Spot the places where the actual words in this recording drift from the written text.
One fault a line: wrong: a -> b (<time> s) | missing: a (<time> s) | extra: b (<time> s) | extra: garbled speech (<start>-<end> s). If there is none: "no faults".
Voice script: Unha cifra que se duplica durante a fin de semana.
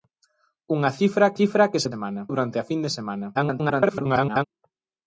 extra: cifra (1.4 s)
wrong: duplica -> semana (1.9 s)
extra: garbled speech (3.3-4.4 s)